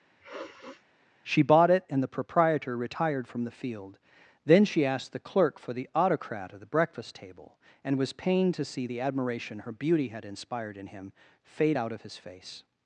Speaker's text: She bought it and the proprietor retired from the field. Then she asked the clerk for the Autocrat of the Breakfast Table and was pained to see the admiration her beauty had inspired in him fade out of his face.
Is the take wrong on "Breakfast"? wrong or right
right